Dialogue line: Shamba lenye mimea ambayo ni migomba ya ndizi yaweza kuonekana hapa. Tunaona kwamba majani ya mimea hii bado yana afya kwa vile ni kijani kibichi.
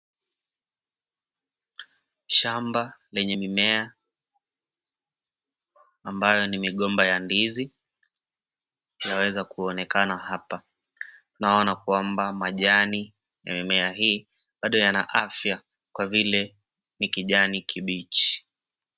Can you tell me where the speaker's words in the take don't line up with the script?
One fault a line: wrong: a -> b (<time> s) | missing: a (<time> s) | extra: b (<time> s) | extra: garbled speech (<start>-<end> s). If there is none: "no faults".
no faults